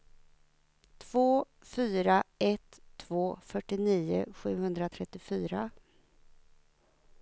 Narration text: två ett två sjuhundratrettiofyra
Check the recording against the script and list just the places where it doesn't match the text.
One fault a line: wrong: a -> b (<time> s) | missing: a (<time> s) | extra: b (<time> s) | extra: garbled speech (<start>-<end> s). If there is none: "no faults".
extra: fyra (1.6 s)
extra: fyrtionio (3.4 s)